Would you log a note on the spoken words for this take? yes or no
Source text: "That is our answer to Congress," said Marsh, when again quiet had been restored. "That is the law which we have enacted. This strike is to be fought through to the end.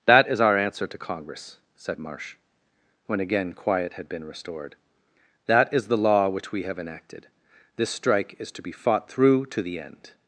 no